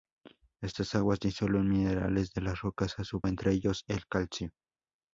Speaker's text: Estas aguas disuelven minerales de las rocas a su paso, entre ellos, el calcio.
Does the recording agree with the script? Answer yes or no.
no